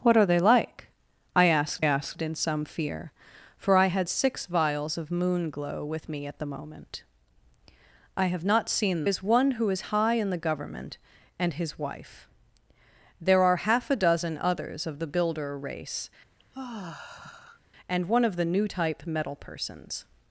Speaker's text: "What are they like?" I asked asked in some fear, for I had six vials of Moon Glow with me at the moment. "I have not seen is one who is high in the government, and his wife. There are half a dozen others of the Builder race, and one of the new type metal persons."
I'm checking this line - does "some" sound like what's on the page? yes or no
yes